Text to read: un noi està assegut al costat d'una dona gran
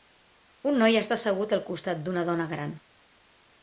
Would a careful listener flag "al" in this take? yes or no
no